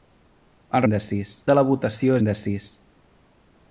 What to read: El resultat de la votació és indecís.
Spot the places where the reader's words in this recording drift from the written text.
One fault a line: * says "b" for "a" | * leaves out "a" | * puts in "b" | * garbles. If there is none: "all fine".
* says "indecís" for "resultat"
* leaves out "és"